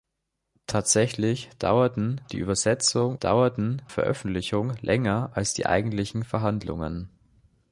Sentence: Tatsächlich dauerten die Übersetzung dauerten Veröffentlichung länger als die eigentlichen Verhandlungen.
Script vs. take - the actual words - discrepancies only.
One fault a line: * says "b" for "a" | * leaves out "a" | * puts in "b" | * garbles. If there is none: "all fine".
all fine